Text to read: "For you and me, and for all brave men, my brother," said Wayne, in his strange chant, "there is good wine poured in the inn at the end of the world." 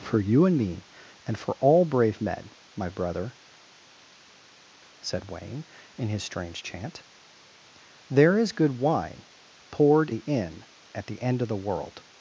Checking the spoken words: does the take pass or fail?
fail